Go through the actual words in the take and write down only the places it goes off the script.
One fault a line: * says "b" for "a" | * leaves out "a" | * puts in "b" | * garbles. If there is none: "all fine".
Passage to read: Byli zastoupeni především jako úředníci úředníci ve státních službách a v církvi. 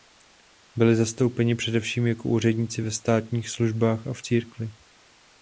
* leaves out "úředníci"